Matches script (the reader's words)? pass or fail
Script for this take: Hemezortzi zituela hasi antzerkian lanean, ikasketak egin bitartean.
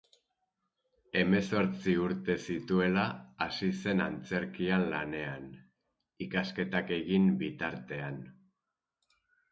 fail